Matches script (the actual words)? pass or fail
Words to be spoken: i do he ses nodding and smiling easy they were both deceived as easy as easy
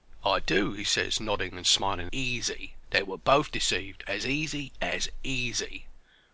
pass